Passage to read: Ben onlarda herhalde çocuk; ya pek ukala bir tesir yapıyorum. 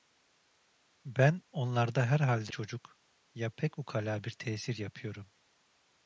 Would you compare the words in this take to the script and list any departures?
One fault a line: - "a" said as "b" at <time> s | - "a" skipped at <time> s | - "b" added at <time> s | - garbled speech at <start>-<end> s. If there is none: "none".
none